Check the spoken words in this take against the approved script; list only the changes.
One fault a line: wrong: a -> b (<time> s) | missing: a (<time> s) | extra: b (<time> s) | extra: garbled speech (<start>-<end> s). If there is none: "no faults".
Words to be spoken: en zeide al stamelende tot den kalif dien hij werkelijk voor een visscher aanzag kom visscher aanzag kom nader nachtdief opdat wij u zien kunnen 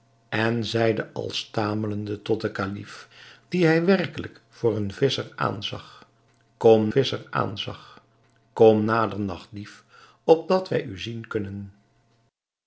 no faults